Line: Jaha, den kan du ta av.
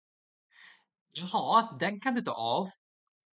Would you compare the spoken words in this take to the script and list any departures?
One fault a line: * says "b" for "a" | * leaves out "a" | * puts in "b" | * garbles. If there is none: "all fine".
all fine